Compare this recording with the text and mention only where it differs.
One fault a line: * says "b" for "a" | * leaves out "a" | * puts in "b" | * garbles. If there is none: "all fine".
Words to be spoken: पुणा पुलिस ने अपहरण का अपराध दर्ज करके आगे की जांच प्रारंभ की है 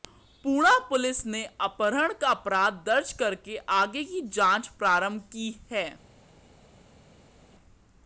all fine